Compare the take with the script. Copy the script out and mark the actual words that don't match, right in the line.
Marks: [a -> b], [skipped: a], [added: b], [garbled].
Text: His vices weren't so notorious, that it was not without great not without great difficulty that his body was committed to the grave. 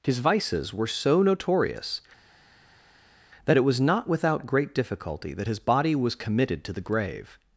His vices [weren't -> were] so notorious, that it was not without great [skipped: not without great] difficulty that his body was committed to the grave.